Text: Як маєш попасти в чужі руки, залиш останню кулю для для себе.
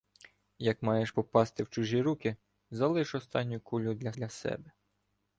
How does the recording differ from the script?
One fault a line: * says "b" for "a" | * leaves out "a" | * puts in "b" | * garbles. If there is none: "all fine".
all fine